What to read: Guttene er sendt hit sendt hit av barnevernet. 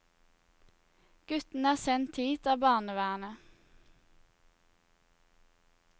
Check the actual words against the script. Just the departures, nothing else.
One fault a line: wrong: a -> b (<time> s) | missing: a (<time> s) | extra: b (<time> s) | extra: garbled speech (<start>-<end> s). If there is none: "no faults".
missing: sendt hit (2.5 s)